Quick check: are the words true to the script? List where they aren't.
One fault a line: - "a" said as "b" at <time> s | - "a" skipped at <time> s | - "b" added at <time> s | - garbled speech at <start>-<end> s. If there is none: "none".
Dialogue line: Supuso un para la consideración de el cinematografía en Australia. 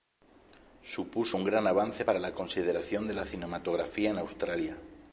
- "gran avance" added at 1.4 s
- "el" said as "la" at 3.1 s